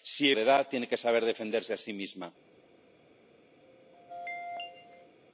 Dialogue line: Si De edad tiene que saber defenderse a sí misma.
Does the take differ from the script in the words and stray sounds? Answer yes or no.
yes